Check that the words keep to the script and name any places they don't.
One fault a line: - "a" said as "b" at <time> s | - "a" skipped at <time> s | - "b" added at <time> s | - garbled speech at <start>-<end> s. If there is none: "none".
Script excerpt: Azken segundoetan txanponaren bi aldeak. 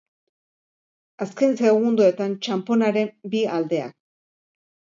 none